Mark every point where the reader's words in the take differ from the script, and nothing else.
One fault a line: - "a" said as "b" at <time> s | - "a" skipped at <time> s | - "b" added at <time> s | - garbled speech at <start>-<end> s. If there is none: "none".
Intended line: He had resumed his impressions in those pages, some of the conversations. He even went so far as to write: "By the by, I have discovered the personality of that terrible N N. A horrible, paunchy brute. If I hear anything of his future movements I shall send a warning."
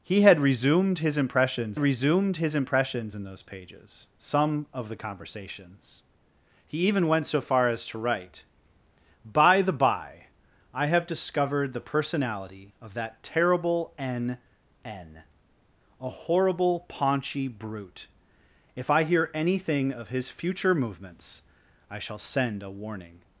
- "resumed his impressions" added at 1.8 s